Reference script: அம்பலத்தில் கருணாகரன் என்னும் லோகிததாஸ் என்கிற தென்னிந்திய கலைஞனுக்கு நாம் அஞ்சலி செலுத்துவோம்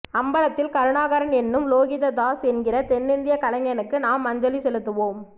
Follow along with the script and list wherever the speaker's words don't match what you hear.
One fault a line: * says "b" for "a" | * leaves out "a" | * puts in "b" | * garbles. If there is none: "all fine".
all fine